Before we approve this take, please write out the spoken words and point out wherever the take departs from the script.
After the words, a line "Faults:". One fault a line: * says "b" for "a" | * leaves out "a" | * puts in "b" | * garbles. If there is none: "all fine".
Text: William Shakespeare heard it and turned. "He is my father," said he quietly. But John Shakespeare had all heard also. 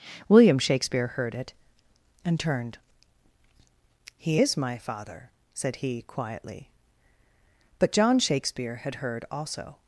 William Shakespeare heard it and turned. "He is my father," said he quietly. But John Shakespeare had heard also.
Faults:
* leaves out "all"